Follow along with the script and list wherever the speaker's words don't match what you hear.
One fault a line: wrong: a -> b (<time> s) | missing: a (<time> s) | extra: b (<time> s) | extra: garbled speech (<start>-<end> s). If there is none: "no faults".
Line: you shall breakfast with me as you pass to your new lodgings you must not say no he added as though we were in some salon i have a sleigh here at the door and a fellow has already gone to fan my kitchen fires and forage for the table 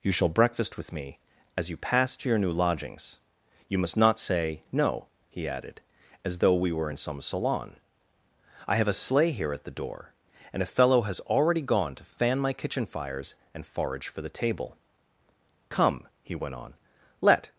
extra: come he went on let (15.7 s)